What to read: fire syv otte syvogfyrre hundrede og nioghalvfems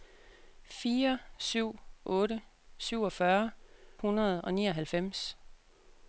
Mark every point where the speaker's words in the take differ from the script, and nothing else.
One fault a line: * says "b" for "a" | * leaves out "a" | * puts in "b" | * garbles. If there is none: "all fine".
all fine